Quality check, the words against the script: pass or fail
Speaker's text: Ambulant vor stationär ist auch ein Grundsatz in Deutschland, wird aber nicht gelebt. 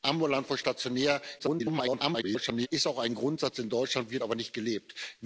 fail